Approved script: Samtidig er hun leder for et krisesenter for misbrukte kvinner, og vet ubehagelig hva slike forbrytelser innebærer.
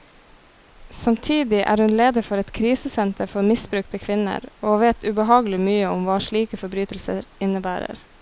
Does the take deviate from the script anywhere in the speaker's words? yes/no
yes